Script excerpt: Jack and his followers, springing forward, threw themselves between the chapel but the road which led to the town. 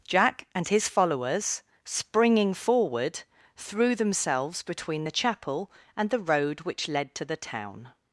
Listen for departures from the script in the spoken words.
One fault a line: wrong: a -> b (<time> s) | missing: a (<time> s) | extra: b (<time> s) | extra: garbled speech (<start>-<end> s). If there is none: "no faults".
wrong: but -> and (5.9 s)